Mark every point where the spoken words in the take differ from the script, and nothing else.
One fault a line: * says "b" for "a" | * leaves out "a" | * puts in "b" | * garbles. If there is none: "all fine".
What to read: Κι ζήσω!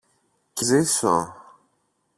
all fine